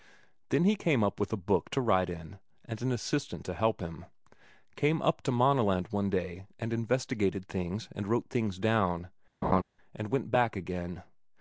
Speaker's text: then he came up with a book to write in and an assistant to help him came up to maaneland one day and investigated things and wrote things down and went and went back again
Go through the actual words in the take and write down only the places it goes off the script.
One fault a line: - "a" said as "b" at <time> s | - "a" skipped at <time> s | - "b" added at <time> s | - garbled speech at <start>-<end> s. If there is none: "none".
- "and went" skipped at 10.3 s